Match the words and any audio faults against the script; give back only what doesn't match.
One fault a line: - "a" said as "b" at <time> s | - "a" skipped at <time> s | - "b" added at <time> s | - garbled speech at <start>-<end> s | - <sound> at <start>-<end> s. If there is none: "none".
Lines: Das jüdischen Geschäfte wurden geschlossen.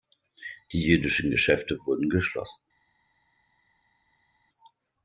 - "Das" said as "Die" at 0.7 s